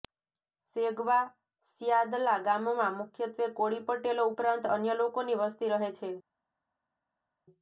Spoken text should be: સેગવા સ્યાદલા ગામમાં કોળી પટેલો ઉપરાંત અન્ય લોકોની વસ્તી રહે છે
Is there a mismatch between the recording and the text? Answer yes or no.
yes